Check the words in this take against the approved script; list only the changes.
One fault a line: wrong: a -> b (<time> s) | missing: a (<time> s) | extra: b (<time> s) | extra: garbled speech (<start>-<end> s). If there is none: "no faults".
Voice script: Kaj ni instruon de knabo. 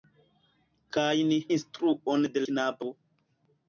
no faults